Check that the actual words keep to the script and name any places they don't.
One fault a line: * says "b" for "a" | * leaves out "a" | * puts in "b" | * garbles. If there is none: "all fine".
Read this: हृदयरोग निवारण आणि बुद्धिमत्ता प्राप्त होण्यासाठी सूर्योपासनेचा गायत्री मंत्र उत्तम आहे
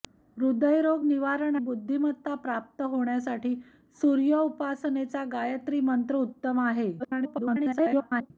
* leaves out "आणि"
* garbles